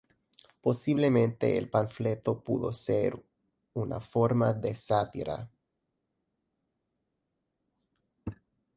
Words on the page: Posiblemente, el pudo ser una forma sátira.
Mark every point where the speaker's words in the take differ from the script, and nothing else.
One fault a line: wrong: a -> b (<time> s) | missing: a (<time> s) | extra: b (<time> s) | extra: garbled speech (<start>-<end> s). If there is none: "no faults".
extra: panfleto (1.7 s)
extra: de (4.5 s)